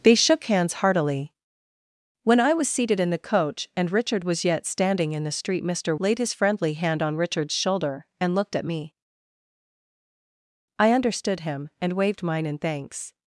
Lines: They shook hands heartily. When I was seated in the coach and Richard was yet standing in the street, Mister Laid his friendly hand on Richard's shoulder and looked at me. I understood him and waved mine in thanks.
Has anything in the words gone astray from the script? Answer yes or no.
no